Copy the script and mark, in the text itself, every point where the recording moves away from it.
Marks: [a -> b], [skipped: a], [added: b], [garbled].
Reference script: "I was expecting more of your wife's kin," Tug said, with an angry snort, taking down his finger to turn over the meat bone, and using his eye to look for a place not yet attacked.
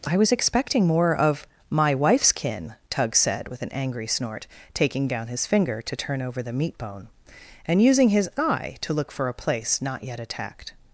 "I was expecting more of [your -> my] wife's kin," Tug said, with an angry snort, taking down his finger to turn over the meat bone, and using his eye to look for a place not yet attacked.